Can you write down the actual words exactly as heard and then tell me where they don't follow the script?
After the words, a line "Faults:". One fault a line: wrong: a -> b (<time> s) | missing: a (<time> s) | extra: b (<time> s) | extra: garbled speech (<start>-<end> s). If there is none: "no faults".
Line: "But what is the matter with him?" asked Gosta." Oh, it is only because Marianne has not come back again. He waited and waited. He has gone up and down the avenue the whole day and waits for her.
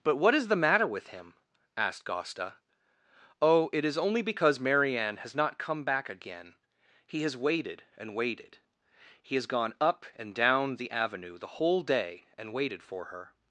"But what is the matter with him?" asked Gosta." Oh, it is only because Marianne has not come back again. He has waited and waited. He has gone up and down the avenue the whole day and waited for her.
Faults:
extra: has (7.2 s)
wrong: waits -> waited (12.5 s)